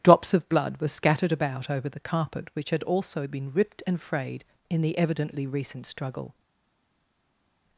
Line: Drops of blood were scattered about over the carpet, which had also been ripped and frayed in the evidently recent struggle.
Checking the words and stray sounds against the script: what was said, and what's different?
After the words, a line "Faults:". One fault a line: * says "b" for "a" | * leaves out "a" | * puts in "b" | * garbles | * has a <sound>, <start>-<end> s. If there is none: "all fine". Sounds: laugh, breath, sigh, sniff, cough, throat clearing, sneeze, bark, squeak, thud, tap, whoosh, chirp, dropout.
Drops of blood were scattered about over the carpet, which had also been ripped and frayed in the evidently recent struggle.
Faults:
all fine